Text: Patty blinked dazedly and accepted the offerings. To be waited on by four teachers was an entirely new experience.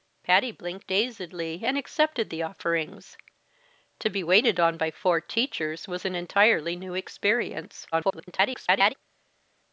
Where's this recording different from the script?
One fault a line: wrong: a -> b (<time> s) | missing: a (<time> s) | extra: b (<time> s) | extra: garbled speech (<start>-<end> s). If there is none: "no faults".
extra: garbled speech (7.9-8.9 s)